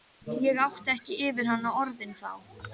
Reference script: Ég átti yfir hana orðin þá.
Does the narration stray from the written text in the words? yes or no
yes